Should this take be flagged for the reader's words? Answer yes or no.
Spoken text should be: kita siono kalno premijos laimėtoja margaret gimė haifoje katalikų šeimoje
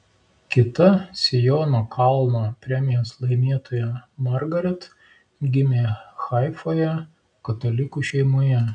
no